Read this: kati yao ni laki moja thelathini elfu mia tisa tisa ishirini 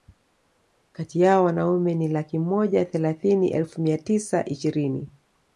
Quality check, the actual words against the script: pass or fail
fail